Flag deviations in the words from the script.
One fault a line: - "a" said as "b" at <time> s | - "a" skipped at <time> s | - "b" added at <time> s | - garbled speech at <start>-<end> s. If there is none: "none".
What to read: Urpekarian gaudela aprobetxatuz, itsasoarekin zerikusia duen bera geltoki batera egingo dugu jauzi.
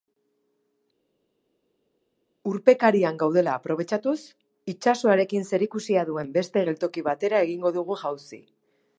- "bera" said as "beste" at 6.4 s